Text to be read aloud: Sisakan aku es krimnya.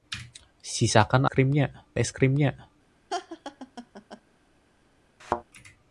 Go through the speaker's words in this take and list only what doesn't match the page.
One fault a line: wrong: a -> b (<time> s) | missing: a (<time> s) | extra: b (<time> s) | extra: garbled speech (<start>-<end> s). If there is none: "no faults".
wrong: aku -> krimnya (1.2 s)